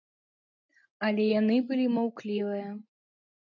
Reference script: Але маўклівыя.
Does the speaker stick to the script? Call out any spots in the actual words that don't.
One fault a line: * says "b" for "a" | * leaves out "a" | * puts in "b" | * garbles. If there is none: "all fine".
* puts in "яны былі"